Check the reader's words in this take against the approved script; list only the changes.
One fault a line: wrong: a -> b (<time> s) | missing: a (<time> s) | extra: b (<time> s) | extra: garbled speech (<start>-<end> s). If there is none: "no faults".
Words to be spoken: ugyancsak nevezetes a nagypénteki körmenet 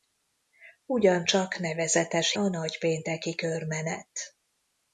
no faults